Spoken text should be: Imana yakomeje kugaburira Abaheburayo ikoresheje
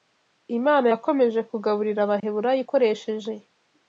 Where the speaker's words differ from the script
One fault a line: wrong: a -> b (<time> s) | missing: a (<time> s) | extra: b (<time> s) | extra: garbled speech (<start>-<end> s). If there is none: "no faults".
no faults